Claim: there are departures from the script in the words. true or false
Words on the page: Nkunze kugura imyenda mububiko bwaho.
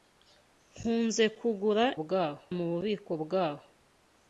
true